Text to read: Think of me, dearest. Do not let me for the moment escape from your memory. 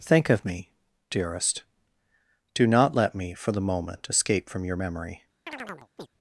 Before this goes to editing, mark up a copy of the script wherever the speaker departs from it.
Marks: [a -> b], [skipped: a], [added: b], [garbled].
Think of me, dearest. Do not let me for the moment escape from your memory.